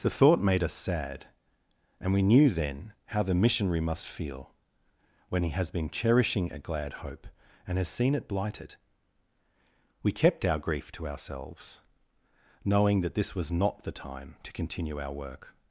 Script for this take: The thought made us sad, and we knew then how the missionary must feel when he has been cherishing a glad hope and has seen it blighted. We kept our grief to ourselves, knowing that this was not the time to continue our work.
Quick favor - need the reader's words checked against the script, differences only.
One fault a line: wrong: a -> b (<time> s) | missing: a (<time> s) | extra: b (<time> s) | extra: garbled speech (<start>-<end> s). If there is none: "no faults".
no faults